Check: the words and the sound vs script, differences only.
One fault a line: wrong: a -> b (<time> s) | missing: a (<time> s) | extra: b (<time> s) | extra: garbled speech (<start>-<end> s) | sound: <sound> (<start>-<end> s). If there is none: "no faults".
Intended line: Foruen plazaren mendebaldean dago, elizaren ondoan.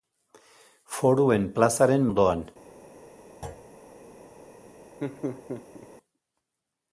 missing: mendebaldean dago elizaren (2.1 s)
sound: thud (3.4-3.7 s)
sound: laugh (5.0-5.9 s)